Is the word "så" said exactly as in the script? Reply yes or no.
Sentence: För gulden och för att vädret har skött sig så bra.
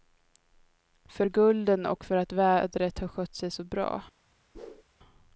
yes